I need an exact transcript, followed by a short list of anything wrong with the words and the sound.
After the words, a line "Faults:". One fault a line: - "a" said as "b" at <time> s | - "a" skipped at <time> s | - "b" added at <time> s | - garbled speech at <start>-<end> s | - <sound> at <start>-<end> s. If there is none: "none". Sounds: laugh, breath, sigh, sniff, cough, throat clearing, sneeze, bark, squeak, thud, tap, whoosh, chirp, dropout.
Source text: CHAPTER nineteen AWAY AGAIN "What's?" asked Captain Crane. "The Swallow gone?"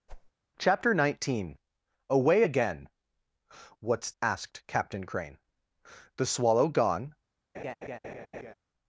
CHAPTER nineteen AWAY AGAIN "What's?" asked Captain Crane. "The Swallow gone?"
Faults:
- whoosh at 0.1-0.3 s
- laugh at 7.5-8.5 s